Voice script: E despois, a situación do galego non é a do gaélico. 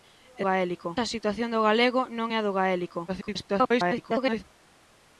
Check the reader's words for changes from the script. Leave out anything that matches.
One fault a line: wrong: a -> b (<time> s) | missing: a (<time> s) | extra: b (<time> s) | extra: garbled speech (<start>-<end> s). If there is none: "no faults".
wrong: despois -> gaélico (0.5 s)
extra: garbled speech (3.1-4.4 s)